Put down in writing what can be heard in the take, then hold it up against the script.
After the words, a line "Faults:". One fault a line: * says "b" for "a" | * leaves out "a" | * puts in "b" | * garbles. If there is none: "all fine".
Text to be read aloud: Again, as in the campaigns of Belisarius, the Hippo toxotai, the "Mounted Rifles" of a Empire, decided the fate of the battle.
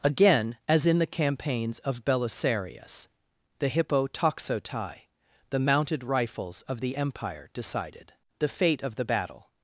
Again, as in the campaigns of Belisarius, the Hippo toxotai, the "Mounted Rifles" of the Empire, decided the fate of the battle.
Faults:
* says "the" for "a"